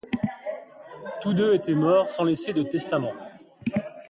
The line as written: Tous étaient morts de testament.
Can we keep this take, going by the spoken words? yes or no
no